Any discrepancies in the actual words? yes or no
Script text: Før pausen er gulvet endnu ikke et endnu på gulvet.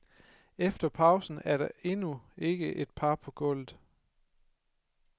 yes